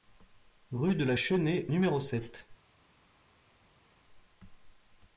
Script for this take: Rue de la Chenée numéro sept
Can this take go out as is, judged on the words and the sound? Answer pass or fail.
pass